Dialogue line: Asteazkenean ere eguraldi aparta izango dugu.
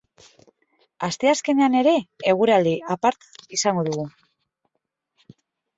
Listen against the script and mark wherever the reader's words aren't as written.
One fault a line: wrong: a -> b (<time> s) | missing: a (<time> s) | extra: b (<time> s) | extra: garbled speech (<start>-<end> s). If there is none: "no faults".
no faults